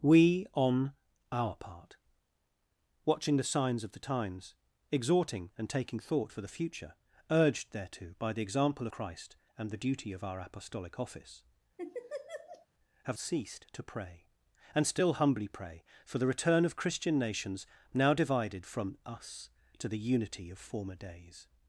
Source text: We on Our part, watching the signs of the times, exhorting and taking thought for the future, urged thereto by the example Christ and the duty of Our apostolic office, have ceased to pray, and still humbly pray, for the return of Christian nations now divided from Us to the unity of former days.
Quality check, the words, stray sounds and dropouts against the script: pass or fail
fail